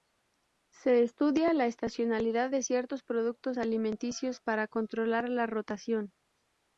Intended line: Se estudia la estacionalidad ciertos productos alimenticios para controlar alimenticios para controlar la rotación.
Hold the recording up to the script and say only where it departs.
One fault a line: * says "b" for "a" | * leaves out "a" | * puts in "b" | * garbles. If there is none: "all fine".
* puts in "de"
* leaves out "alimenticios para controlar"